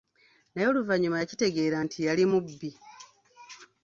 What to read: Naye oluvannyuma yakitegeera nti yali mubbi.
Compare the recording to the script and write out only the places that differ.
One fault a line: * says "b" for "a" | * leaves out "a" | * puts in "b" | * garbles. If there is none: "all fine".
all fine